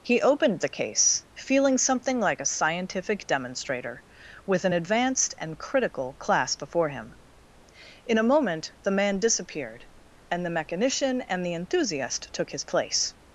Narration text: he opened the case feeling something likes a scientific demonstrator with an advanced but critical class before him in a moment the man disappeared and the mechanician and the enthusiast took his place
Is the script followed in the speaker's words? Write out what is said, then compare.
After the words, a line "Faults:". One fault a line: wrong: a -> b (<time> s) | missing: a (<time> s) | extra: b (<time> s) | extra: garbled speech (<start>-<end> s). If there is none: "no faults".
he opened the case feeling something like a scientific demonstrator with an advanced and critical class before him in a moment the man disappeared and the mechanician and the enthusiast took his place
Faults:
wrong: likes -> like (2.2 s)
wrong: but -> and (5.4 s)